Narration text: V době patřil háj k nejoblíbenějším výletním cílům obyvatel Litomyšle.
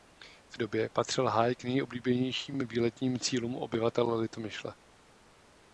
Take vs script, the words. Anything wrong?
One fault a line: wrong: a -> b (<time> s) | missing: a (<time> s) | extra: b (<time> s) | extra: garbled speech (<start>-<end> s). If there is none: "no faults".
no faults